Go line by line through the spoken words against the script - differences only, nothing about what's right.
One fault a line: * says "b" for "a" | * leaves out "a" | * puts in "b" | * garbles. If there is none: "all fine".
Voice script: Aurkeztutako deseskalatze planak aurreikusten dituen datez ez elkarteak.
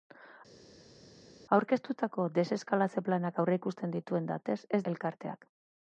all fine